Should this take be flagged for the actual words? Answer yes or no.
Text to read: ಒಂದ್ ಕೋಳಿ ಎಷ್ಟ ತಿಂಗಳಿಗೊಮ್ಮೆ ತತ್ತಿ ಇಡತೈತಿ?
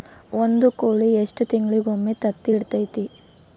no